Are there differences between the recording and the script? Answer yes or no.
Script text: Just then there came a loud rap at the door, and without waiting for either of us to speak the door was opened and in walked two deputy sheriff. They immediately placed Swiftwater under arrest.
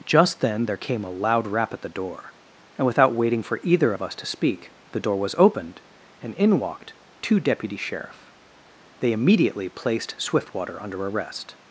no